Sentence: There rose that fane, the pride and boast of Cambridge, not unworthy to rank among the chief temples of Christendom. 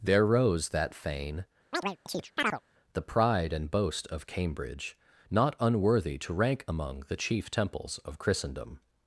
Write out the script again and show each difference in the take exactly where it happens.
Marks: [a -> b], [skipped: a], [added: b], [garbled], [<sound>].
There rose that fane, [chirp] the pride and boast of Cambridge, not unworthy to rank among the chief temples of Christendom.